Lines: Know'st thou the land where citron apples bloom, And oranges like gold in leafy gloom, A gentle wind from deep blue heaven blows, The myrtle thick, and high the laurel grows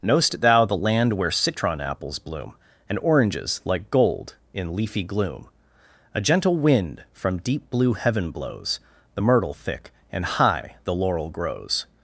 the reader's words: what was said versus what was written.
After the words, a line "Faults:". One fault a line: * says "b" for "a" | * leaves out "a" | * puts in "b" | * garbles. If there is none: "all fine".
Know'st thou the land where citron apples bloom, And oranges like gold in leafy gloom, A gentle wind from deep blue heaven blows, The myrtle thick, and high the laurel grows
Faults:
all fine